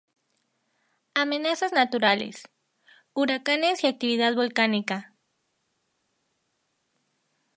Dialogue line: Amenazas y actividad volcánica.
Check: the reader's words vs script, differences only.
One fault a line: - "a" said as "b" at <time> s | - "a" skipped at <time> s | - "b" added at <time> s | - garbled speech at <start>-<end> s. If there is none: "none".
- "naturales Huracanes" added at 1.7 s